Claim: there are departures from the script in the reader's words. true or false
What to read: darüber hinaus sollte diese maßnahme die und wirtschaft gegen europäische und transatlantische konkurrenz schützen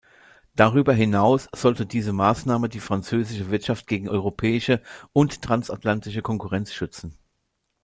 true